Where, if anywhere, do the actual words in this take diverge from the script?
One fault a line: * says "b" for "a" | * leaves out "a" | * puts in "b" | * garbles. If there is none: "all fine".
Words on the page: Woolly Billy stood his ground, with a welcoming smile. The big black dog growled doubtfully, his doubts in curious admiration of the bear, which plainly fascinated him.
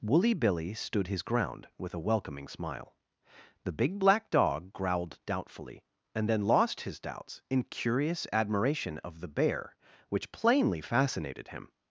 * puts in "and then lost"